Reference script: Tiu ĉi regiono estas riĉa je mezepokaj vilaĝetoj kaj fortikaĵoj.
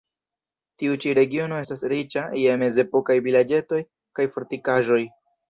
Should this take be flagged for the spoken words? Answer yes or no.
no